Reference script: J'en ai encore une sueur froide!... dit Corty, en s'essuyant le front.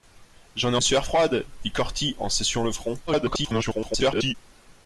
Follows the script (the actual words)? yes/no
no